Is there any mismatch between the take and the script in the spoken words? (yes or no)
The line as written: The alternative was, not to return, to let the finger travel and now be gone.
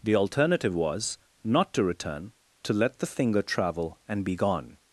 yes